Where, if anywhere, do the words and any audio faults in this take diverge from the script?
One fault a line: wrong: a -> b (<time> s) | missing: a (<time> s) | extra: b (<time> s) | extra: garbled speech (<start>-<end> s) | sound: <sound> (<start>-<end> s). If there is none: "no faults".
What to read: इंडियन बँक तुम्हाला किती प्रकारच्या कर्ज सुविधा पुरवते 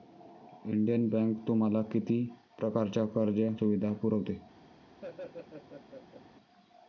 sound: laugh (5.0-6.2 s)